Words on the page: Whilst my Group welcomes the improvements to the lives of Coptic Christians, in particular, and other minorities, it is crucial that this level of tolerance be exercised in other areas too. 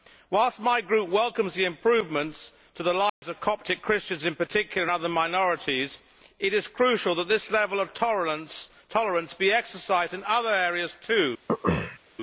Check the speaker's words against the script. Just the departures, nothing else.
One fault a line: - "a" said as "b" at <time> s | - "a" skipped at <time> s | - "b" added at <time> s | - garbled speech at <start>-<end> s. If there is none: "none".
none